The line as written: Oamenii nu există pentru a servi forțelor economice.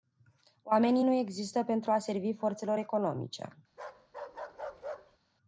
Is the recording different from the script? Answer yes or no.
no